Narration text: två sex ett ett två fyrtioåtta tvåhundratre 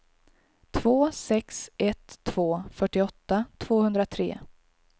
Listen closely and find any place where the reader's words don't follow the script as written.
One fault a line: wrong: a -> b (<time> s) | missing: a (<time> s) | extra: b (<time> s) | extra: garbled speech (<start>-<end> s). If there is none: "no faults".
missing: ett (2.2 s)